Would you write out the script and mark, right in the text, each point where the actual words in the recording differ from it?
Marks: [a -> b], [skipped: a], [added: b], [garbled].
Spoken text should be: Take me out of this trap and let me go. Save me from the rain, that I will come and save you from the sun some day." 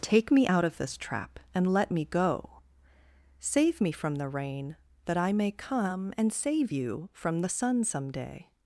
Take me out of this trap and let me go. Save me from the rain, that I [will -> may] come and save you from the sun some day."